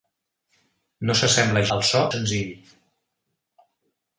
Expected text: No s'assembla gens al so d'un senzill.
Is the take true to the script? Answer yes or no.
no